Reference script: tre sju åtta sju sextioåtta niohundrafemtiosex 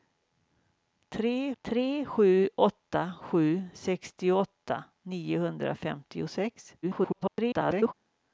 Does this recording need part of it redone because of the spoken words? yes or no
yes